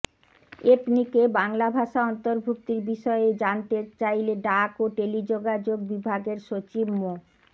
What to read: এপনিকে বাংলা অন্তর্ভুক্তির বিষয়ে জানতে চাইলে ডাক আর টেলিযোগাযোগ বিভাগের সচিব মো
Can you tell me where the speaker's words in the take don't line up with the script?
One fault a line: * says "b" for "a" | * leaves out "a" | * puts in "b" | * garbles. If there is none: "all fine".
* puts in "ভাষা"
* says "ও" for "আর"